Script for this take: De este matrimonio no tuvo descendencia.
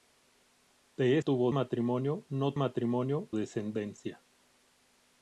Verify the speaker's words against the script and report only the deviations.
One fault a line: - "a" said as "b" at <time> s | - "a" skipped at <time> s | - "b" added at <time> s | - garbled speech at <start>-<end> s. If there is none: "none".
- "este" said as "tuvo" at 1.2 s
- "tuvo" said as "matrimonio" at 2.6 s